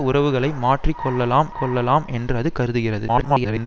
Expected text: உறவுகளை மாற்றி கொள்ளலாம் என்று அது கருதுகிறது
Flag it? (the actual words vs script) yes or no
yes